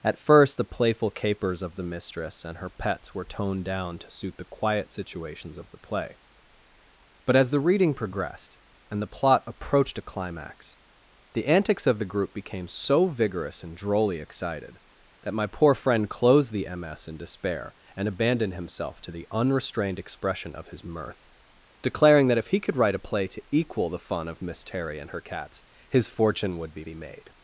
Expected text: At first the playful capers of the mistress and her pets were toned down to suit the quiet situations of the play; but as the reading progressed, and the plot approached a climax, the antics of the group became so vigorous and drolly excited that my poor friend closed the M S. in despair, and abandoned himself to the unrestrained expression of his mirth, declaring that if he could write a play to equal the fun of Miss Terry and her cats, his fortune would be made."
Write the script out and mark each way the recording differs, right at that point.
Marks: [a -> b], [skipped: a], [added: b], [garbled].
At first the playful capers of the mistress and her pets were toned down to suit the quiet situations of the play; but as the reading progressed, and the plot approached a climax, the antics of the group became so vigorous and drolly excited that my poor friend closed the M S. in despair, and abandoned himself to the unrestrained expression of his mirth, declaring that if he could write a play to equal the fun of Miss Terry and her cats, his fortune would be [added: be] made."